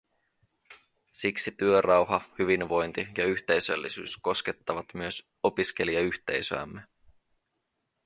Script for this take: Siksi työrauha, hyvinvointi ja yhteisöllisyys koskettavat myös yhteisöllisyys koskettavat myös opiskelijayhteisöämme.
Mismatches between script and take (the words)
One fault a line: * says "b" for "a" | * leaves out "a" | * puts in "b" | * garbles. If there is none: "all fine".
* leaves out "yhteisöllisyys koskettavat myös"